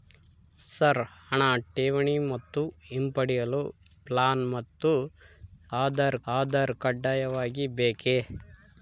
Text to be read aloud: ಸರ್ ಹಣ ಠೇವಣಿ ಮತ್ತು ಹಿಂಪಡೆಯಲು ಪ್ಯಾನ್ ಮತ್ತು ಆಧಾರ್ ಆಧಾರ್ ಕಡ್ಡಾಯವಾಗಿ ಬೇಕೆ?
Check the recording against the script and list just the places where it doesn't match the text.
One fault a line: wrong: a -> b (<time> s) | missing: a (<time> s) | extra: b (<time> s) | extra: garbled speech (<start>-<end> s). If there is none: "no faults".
no faults